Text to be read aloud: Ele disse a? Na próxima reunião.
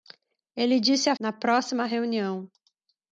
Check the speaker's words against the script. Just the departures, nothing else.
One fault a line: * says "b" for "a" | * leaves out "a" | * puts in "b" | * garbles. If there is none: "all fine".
all fine